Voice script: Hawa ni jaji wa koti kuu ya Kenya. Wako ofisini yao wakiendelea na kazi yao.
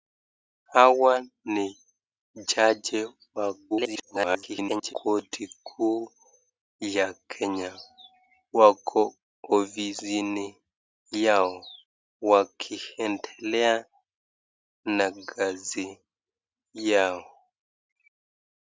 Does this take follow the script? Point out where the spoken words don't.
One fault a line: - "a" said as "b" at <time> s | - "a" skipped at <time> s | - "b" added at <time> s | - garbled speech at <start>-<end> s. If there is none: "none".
- garbled speech at 3.7-4.9 s